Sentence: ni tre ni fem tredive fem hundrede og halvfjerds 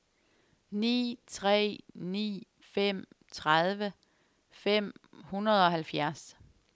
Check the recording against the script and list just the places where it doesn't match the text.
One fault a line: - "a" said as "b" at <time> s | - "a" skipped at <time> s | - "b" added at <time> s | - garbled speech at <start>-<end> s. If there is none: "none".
none